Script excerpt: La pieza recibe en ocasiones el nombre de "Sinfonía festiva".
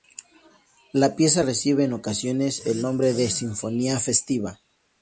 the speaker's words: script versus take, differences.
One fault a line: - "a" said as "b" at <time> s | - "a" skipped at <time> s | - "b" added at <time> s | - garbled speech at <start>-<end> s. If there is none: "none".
none